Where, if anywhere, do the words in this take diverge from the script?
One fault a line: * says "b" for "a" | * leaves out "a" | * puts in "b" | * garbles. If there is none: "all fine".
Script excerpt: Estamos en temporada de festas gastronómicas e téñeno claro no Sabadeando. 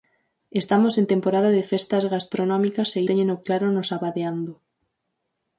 all fine